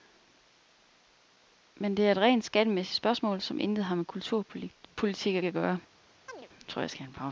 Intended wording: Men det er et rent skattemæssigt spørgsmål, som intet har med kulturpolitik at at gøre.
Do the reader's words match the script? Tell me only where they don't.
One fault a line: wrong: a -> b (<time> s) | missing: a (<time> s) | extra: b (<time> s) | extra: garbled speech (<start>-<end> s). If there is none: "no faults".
no faults